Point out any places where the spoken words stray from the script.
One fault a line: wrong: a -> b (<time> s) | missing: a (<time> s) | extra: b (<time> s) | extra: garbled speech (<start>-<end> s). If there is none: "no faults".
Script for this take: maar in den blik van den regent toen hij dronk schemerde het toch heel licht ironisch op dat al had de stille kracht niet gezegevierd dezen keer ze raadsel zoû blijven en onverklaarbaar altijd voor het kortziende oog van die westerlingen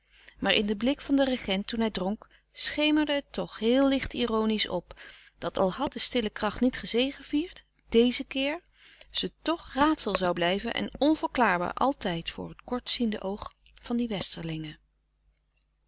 extra: toch (9.4 s)